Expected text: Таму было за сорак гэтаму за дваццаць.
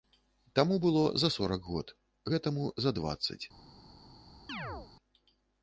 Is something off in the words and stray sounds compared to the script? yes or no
yes